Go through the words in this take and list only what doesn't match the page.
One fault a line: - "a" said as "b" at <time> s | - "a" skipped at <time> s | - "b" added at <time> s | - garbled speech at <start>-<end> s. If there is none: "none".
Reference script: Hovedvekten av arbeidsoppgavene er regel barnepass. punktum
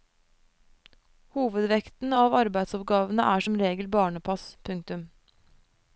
- "som" added at 3.4 s